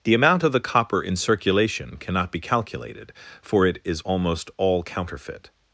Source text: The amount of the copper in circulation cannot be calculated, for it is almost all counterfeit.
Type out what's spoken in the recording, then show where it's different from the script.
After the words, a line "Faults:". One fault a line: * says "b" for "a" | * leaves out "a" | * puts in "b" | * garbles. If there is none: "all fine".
The amount of the copper in circulation cannot be calculated, for it is almost all counterfeit.
Faults:
all fine